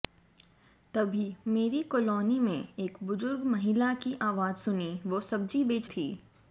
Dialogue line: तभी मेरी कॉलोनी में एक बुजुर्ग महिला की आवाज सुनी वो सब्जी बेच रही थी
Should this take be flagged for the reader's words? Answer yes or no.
yes